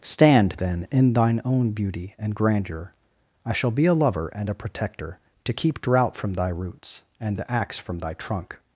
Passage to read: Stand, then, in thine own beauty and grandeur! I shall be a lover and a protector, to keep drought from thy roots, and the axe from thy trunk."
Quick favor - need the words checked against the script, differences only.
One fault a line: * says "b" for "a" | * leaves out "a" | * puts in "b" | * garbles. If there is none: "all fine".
all fine